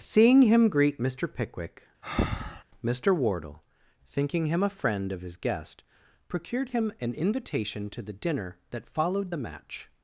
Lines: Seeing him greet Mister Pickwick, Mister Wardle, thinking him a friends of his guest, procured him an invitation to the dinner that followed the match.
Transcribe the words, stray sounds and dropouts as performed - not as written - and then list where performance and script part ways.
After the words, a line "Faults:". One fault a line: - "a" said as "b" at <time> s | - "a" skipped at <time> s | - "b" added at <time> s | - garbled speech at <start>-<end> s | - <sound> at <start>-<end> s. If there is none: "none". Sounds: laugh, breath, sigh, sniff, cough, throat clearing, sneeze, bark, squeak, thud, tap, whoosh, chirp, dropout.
Seeing him greet Mister Pickwick, Mister Wardle, thinking him a friend of his guest, procured him an invitation to the dinner that followed the match.
Faults:
- breath at 2.0-2.6 s
- "friends" said as "friend" at 4.7 s